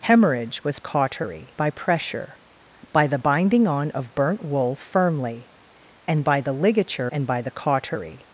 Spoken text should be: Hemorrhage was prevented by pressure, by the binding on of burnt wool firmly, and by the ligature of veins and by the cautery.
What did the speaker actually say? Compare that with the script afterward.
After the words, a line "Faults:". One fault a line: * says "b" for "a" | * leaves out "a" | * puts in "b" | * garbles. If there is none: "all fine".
Hemorrhage was cautery by pressure, by the binding on of burnt wool firmly, and by the ligature and by the cautery.
Faults:
* says "cautery" for "prevented"
* leaves out "of veins"